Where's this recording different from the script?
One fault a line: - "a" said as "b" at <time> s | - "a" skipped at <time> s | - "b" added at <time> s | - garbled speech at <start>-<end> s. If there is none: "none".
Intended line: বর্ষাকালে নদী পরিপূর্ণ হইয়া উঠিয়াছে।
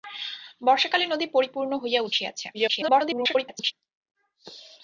- garbled speech at 2.5-3.7 s